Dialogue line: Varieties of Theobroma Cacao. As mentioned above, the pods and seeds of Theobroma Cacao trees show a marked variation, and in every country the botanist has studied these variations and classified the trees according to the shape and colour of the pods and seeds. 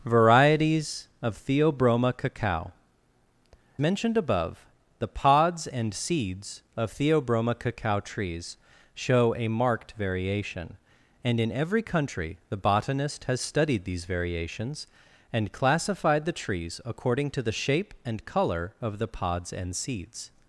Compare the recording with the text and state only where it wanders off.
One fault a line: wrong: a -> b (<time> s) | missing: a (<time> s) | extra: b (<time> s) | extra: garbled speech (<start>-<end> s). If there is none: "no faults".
missing: As (2.7 s)